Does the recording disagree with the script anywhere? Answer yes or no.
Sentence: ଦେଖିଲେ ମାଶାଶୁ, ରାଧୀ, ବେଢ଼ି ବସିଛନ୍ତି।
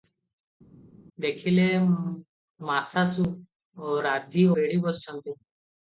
no